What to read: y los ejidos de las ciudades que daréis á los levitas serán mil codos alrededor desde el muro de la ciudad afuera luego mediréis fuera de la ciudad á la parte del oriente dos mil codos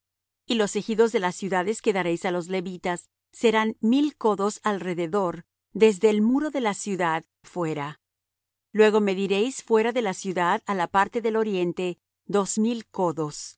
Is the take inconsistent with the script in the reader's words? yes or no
no